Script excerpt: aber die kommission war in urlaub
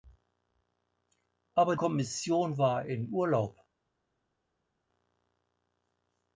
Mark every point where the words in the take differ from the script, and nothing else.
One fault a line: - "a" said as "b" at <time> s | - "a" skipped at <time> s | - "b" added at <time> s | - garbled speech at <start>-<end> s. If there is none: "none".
- "die" skipped at 1.8 s